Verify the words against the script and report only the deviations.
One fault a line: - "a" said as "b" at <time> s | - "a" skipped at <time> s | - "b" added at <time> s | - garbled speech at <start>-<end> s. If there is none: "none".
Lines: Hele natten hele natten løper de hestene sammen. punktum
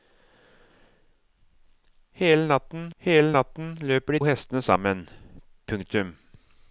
none